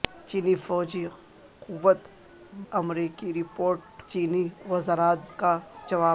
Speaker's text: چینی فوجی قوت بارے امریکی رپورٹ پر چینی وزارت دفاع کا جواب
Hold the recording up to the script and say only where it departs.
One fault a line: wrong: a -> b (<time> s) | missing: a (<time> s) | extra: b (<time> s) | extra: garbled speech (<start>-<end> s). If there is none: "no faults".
missing: بارے (2.0 s)
missing: پر (3.8 s)
missing: دفاع (5.3 s)